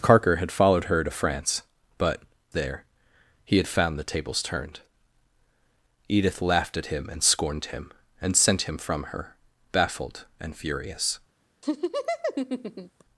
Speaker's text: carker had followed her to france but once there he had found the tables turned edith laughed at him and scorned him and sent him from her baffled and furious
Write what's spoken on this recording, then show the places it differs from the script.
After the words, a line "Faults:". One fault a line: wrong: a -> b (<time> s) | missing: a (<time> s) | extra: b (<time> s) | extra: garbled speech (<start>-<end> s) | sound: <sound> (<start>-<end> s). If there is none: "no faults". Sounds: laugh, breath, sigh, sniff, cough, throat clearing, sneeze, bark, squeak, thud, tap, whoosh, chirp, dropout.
carker had followed her to france but there he had found the tables turned edith laughed at him and scorned him and sent him from her baffled and furious
Faults:
missing: once (2.2 s)
sound: laugh (11.6-13.0 s)